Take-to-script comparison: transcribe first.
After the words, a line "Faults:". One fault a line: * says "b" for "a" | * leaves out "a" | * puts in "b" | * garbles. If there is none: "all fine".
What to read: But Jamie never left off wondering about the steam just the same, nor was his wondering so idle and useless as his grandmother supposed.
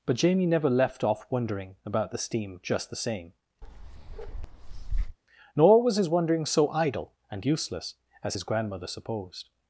But Jamie never left off wondering about the steam just the same, nor was his wondering so idle and useless as his grandmother supposed.
Faults:
all fine